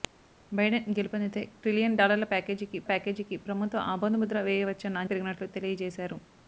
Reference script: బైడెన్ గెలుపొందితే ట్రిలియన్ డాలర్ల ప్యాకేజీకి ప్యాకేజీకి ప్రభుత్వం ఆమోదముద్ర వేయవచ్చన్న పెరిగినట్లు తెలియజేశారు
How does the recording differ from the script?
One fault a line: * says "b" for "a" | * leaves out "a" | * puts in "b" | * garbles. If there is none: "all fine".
all fine